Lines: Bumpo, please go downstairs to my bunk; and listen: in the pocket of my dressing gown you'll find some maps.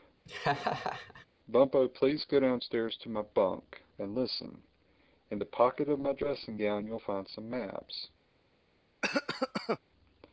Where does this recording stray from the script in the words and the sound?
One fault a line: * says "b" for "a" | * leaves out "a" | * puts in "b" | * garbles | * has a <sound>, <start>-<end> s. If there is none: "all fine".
* has a laugh, 0.3-1.3 s
* has a cough, 9.0-9.8 s